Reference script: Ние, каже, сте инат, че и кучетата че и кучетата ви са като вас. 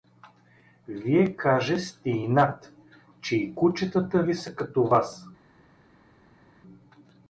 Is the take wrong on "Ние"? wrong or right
wrong